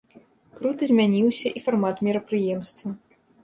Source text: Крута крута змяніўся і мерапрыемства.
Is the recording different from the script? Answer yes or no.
yes